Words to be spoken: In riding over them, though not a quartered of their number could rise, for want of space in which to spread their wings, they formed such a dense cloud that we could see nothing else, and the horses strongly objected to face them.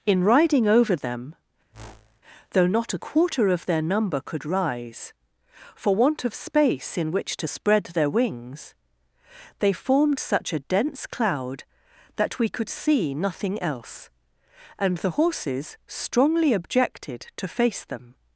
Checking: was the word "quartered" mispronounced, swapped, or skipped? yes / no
yes